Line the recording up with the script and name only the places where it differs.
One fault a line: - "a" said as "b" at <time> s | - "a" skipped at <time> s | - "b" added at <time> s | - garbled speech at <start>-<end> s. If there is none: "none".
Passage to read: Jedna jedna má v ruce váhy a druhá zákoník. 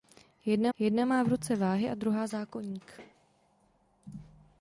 none